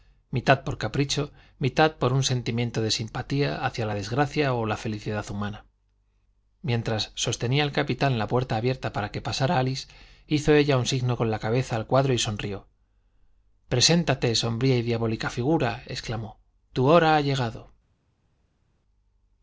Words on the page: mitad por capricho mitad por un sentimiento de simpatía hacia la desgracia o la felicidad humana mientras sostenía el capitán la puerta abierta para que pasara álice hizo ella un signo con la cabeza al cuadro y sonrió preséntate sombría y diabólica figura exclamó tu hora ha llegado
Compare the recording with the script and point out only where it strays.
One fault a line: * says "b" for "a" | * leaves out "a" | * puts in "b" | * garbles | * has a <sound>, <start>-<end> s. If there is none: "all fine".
all fine